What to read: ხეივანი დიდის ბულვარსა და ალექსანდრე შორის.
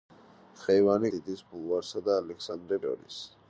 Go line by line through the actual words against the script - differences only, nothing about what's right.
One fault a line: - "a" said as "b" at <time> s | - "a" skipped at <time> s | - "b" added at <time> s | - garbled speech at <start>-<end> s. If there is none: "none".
none